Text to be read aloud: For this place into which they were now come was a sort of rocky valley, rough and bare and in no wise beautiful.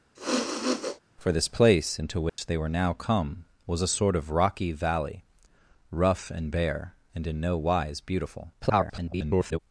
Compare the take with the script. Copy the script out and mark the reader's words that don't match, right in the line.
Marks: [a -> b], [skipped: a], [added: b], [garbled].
For this place into which they were now come was a sort of rocky valley, rough and bare and in no wise beautiful. [garbled]